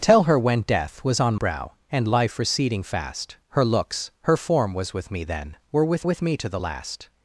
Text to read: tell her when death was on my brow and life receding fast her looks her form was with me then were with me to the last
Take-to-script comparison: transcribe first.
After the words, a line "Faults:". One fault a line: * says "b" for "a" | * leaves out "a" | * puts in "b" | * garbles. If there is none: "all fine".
tell her when death was on brow and life receding fast her looks her form was with me then were with with me to the last
Faults:
* leaves out "my"
* puts in "with"